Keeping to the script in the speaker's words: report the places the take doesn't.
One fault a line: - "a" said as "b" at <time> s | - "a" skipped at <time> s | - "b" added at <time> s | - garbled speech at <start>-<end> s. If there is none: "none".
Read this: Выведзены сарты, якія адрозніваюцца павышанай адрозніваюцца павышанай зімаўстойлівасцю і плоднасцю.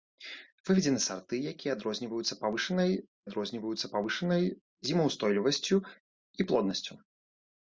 none